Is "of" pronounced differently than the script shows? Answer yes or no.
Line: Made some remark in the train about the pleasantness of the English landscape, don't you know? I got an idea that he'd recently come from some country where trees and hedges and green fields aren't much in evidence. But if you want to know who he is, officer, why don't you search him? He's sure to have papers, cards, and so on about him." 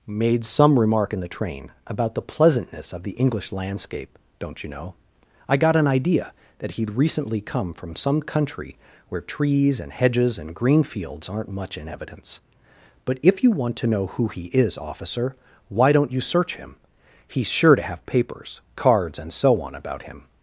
no